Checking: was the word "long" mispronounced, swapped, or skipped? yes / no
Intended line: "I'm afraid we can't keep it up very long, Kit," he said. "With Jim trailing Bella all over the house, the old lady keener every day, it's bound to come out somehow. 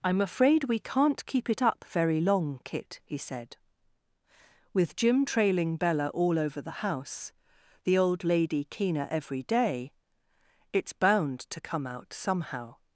no